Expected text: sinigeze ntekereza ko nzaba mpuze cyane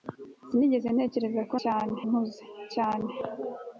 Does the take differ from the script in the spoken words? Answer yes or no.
yes